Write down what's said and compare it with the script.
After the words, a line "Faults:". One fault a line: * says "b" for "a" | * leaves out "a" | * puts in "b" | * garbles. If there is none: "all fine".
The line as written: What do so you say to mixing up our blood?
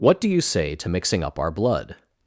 What do you say to mixing up our blood?
Faults:
* leaves out "so"